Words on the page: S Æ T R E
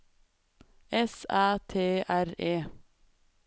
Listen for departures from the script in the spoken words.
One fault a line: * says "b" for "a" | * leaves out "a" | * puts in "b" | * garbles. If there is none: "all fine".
all fine